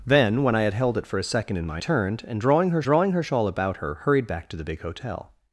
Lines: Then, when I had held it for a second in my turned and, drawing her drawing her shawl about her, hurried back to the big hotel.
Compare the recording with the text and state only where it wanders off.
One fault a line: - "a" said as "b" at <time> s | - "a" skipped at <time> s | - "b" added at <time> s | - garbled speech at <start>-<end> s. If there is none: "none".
none